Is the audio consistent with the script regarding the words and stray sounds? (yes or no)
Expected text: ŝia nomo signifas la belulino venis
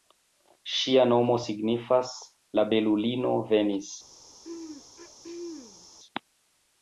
no